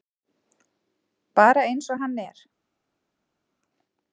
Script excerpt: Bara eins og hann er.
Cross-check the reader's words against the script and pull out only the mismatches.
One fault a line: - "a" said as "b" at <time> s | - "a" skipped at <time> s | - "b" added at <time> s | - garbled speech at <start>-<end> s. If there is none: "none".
none